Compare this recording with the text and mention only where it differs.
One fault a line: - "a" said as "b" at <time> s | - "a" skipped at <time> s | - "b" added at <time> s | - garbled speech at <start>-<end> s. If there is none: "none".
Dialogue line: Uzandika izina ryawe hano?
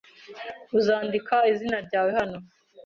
none